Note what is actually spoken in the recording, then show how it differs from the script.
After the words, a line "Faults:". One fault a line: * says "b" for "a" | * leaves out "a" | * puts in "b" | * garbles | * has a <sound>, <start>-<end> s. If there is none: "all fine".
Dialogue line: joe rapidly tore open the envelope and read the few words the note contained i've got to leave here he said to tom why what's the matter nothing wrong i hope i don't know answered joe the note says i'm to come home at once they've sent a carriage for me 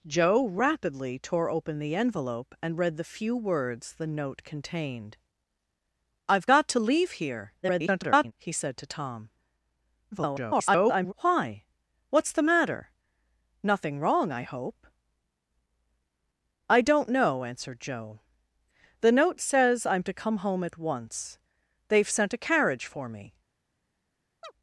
joe rapidly tore open the envelope and read the few words the note contained i've got to leave here [garbled] he said to tom [garbled] why what's the matter nothing wrong i hope i don't know answered joe the note says i'm to come home at once they've sent a carriage for me
Faults:
* garbles
* garbles
* has a chirp, 24.4-24.5 s